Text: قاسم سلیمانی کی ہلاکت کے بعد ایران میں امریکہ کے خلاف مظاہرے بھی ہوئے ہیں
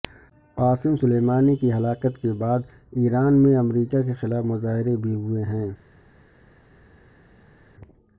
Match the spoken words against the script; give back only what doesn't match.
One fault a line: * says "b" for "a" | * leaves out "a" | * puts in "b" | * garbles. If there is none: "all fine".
all fine